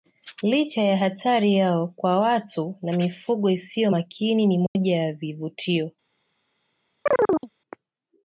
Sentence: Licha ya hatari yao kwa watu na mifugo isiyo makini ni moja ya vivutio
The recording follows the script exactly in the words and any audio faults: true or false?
false